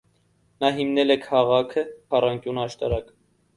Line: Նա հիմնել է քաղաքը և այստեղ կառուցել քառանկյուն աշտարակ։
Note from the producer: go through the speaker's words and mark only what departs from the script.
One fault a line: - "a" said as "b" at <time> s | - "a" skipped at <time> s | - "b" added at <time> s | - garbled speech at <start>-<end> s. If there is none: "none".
- "և այստեղ կառուցել" skipped at 1.8 s